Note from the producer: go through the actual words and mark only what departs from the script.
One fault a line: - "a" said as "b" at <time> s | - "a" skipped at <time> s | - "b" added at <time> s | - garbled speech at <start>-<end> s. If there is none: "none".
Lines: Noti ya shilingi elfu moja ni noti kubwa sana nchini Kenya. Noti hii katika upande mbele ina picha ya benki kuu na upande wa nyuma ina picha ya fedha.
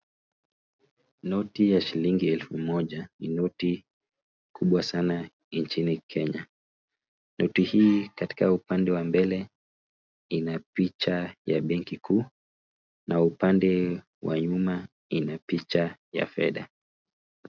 - "wa" added at 8.9 s